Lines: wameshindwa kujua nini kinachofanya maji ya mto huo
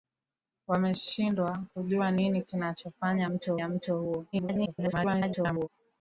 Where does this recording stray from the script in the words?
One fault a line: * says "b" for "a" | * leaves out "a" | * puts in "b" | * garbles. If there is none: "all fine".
* says "mto" for "maji"
* garbles